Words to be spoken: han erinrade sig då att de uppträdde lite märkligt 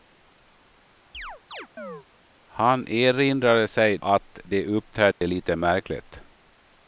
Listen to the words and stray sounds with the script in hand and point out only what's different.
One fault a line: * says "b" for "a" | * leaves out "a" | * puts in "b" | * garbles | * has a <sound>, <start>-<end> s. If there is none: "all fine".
* has a chirp, 1.1-2.1 s
* leaves out "då"
* has a dropout, 5.1-5.2 s